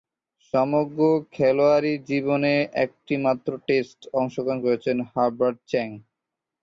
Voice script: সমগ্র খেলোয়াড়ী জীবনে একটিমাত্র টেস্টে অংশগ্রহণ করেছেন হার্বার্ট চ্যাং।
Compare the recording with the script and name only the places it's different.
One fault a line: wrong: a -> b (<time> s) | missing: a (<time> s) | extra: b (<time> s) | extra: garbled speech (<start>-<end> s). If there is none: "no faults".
no faults